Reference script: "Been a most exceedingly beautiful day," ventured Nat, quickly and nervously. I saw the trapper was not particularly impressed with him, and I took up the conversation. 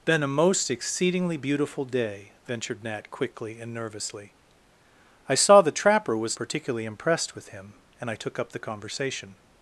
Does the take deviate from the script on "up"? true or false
false